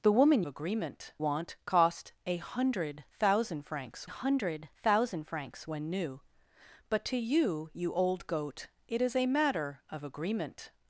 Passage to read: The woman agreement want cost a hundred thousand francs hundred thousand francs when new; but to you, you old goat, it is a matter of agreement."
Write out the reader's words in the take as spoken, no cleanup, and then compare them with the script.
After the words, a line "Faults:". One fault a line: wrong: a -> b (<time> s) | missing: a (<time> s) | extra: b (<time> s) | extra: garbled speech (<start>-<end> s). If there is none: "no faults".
The woman agreement want cost a hundred thousand francs hundred thousand francs when new; but to you, you old goat, it is a matter of agreement."
Faults:
no faults